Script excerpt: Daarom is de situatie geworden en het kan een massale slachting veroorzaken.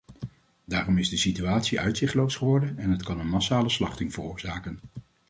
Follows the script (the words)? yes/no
no